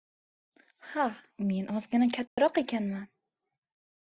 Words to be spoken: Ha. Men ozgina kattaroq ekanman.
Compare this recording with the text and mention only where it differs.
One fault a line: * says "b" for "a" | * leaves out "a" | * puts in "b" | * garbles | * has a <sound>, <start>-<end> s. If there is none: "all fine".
* has a dropout, 2.3-2.4 s